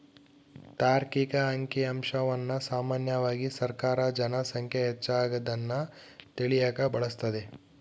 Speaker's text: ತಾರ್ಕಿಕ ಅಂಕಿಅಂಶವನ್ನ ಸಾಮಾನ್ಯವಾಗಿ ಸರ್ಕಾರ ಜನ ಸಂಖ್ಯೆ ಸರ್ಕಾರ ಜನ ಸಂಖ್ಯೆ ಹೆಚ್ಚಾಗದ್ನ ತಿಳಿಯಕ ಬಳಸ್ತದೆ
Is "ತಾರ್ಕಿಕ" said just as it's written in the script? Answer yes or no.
yes